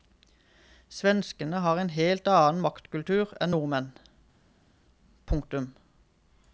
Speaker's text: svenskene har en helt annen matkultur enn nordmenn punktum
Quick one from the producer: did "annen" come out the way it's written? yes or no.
yes